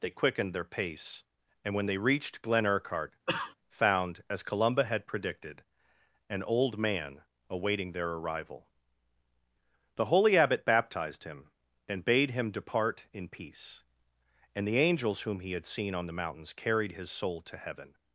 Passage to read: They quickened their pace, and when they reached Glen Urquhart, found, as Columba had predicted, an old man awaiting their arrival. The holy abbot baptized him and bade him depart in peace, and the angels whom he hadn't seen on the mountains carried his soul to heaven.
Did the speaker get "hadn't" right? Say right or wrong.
wrong